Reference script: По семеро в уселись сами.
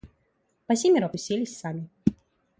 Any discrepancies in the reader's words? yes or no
no